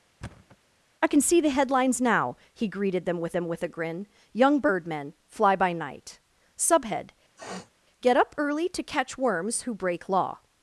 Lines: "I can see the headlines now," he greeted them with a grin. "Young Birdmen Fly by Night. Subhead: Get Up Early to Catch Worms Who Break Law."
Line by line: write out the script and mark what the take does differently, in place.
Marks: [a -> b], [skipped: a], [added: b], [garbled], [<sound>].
[thud] "I can see the headlines now," he greeted them with [added: them with] a grin. "Young Birdmen Fly by Night. Subhead: [sniff] Get Up Early to Catch Worms Who Break Law."